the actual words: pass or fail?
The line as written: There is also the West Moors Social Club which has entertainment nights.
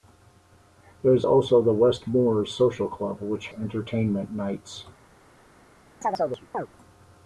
fail